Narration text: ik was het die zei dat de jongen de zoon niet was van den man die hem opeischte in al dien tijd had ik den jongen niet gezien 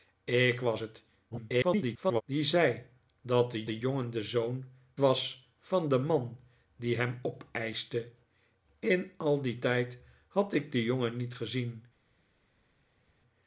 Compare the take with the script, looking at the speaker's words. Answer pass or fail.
fail